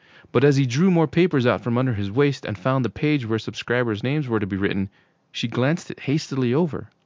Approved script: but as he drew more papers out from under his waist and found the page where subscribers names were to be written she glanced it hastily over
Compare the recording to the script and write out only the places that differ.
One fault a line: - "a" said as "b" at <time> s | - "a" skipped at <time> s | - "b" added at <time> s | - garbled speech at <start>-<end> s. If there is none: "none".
none